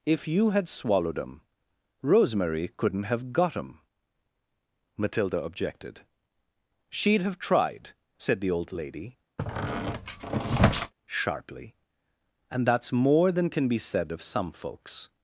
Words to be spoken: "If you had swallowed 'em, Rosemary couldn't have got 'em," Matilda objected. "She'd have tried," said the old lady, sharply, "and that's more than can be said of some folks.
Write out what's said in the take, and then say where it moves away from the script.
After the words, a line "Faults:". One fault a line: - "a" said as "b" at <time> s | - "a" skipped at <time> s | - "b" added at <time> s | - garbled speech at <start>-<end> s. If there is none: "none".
"If you had swallowed 'em, Rosemary couldn't have got 'em," Matilda objected. "She'd have tried," said the old lady, sharply, "and that's more than can be said of some folks.
Faults:
none